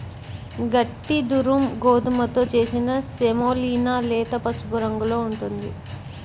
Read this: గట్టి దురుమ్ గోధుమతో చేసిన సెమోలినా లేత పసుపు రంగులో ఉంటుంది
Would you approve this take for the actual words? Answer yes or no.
yes